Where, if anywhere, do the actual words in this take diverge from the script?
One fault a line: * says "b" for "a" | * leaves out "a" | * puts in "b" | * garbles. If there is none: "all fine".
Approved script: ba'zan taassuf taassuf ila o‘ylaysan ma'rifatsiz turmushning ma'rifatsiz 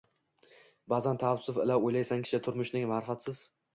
* leaves out "taassuf"
* says "kishi" for "ma'rifatsiz"